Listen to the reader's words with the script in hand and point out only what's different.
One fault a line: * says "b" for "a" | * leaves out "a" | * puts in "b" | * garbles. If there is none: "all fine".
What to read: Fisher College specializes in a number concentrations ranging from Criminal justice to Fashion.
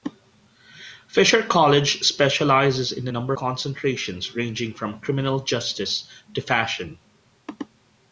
all fine